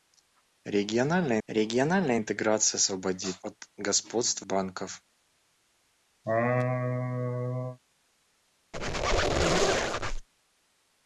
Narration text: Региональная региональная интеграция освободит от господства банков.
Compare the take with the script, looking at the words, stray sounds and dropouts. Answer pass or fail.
fail